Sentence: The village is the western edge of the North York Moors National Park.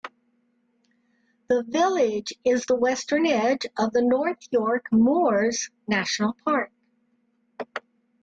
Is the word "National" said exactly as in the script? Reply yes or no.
yes